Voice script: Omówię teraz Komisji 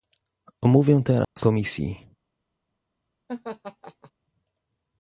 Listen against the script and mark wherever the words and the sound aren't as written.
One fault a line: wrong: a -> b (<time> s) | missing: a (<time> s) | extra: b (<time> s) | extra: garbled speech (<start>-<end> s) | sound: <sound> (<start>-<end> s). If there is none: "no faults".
sound: dropout (1.2-1.4 s)
sound: laugh (3.3-4.1 s)